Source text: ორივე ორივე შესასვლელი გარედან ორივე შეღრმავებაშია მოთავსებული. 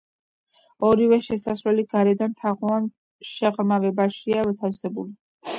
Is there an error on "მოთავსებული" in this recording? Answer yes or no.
no